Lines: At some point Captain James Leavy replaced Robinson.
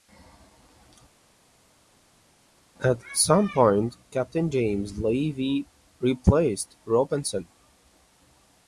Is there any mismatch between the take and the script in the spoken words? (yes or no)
no